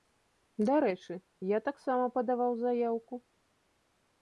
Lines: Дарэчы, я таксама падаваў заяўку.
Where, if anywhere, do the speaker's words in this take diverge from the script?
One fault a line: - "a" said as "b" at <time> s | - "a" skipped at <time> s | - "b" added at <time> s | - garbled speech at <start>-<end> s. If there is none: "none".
none